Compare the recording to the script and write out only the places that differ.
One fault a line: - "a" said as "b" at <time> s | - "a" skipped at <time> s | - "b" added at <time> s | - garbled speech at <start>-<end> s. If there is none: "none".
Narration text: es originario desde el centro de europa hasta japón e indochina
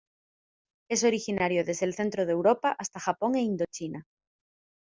none